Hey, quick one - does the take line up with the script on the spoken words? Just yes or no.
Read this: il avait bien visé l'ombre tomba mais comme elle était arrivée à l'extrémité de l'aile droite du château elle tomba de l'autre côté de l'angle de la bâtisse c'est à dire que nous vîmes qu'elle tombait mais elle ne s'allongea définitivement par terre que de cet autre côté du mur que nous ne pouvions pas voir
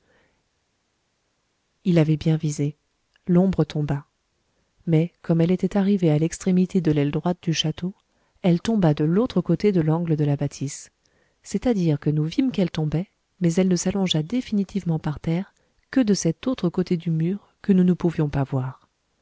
yes